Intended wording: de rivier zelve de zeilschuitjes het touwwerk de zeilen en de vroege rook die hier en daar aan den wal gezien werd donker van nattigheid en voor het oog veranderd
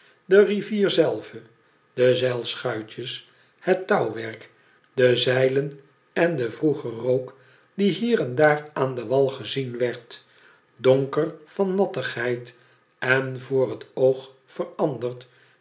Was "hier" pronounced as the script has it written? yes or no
yes